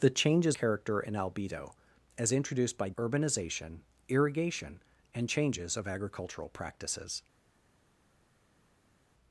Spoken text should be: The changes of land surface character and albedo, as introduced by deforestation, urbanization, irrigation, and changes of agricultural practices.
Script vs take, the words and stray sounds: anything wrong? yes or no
yes